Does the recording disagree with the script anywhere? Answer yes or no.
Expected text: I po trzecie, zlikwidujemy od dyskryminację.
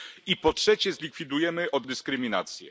no